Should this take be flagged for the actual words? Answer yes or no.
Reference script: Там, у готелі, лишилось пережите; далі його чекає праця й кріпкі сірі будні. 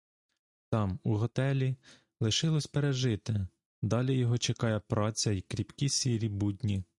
no